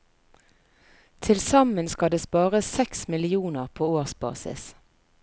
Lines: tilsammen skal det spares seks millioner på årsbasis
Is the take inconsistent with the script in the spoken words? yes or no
no